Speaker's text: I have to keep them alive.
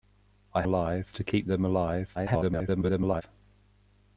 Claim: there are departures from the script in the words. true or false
true